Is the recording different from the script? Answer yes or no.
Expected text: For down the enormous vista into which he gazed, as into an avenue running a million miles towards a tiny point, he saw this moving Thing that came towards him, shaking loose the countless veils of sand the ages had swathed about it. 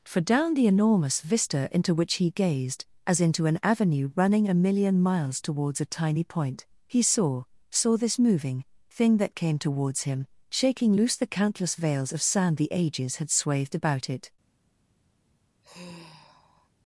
yes